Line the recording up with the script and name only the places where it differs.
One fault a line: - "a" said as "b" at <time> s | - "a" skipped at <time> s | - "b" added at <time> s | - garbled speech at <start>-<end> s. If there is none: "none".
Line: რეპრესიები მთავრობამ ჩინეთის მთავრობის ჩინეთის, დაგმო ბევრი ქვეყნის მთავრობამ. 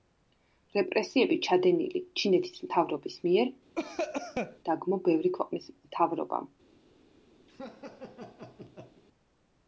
- "მთავრობამ" said as "ჩადენილი" at 1.5 s
- "ჩინეთის" said as "მიერ" at 3.3 s